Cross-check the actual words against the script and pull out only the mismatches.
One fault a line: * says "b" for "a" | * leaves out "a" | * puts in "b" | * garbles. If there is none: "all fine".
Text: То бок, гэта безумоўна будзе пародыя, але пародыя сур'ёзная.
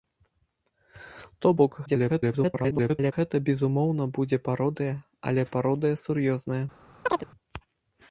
* garbles